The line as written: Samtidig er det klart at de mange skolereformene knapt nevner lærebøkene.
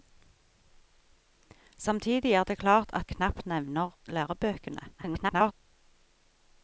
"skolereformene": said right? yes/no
no